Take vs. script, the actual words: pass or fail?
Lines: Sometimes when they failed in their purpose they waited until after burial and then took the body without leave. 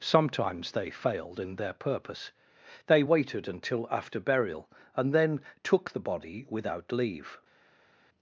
fail